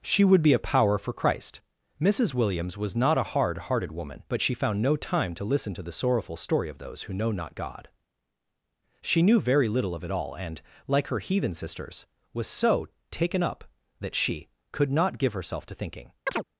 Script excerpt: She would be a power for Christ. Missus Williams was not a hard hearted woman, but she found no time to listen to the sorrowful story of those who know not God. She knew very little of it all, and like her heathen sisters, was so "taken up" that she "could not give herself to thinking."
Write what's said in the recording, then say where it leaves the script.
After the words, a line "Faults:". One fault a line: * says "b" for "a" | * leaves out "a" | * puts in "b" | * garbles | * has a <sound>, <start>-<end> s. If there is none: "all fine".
She would be a power for Christ. Missus Williams was not a hard hearted woman, but she found no time to listen to the sorrowful story of those who know not God. She knew very little of it all, and like her heathen sisters, was so "taken up" that she "could not give herself to thinking."
Faults:
* has a chirp, 16.3-16.4 s